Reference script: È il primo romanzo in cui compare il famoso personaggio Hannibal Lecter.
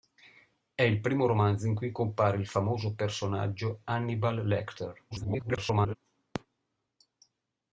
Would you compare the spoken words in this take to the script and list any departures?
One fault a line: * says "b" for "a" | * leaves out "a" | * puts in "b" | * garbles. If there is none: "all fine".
* garbles